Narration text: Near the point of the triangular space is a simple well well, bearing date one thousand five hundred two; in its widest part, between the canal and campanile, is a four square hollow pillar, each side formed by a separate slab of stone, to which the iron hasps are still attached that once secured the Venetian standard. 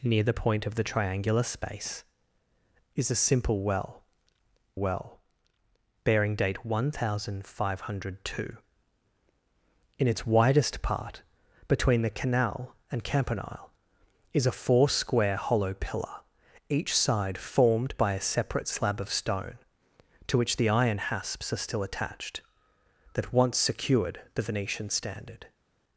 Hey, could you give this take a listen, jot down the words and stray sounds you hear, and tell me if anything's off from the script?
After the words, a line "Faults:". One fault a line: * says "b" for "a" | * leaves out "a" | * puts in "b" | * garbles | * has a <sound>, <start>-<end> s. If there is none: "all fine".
Near the point of the triangular space is a simple well well, bearing date one thousand five hundred two; in its widest part, between the canal and campanile, is a four square hollow pillar, each side formed by a separate slab of stone, to which the iron hasps are still attached that once secured the Venetian standard.
Faults:
all fine